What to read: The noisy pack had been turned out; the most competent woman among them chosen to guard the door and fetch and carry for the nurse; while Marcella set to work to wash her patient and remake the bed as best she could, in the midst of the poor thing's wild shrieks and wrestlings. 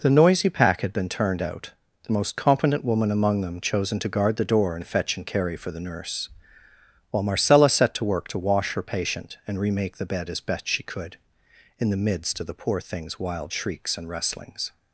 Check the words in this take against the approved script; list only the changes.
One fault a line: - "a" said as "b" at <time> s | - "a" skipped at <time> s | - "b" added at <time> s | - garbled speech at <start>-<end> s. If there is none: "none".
none